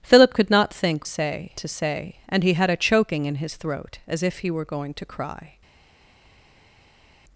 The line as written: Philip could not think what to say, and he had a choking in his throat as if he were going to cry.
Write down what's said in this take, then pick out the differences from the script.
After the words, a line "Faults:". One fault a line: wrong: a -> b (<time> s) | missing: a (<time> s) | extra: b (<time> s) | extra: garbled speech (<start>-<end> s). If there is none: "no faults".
Philip could not think say to say, and he had a choking in his throat as if he were going to cry.
Faults:
wrong: what -> say (1.0 s)